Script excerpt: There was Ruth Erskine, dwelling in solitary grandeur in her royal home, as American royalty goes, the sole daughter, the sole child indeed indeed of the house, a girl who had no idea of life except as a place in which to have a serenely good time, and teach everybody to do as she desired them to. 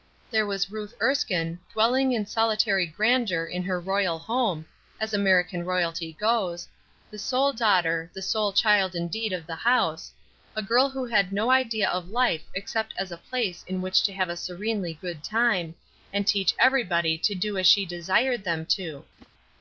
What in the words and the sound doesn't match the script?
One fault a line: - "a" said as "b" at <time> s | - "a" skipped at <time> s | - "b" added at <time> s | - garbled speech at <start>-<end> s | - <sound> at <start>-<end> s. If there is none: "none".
- "indeed" skipped at 9.3 s
- whoosh at 19.2-19.3 s